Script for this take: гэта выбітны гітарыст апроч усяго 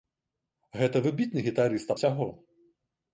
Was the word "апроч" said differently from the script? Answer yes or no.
yes